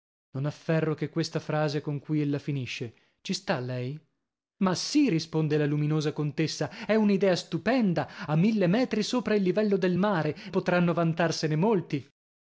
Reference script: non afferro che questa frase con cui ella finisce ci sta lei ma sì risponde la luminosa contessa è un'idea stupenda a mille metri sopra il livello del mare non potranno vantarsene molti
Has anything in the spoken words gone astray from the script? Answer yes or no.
yes